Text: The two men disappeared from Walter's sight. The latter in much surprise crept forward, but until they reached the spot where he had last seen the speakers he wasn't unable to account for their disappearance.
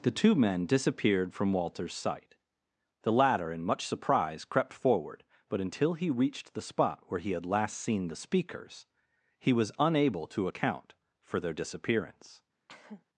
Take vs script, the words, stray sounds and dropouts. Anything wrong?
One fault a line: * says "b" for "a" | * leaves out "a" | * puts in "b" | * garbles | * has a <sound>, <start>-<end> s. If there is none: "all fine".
* says "he" for "they"
* says "was" for "wasn't"
* has a cough, 12.7-13.1 s